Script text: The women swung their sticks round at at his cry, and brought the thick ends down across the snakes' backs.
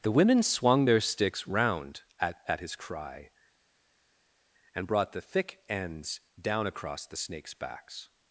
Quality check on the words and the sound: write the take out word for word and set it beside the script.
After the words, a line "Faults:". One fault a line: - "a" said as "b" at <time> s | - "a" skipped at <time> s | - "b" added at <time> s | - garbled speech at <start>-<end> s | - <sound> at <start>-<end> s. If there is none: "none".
The women swung their sticks round at at his cry, and brought the thick ends down across the snakes' backs.
Faults:
none